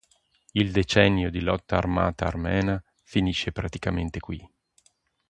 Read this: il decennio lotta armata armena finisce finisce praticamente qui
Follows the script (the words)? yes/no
no